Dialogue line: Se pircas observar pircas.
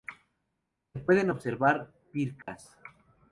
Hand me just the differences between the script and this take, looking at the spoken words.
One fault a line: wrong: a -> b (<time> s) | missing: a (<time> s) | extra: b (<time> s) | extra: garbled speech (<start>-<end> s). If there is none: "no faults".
wrong: pircas -> pueden (1.0 s)